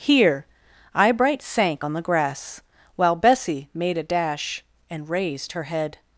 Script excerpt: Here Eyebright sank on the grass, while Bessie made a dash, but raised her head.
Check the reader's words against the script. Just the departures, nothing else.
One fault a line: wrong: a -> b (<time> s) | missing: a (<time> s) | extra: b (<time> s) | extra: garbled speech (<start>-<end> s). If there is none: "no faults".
wrong: but -> and (4.9 s)